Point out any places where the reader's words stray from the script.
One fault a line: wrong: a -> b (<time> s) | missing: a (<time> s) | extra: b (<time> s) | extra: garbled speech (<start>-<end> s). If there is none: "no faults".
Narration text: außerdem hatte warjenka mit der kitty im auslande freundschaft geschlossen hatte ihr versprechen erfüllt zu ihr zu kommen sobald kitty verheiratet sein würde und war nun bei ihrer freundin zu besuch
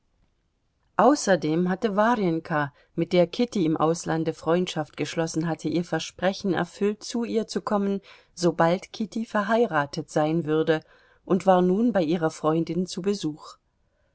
no faults